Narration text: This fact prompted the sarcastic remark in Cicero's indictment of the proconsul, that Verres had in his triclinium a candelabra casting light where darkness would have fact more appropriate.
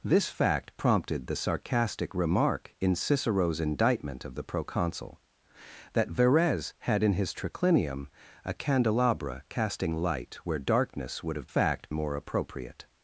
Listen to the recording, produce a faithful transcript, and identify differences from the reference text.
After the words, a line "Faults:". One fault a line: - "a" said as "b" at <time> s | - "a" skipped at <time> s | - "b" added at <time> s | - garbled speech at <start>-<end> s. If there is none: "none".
This fact prompted the sarcastic remark in Cicero's indictment of the proconsul, that Verres had in his triclinium a candelabra casting light where darkness would have fact more appropriate.
Faults:
none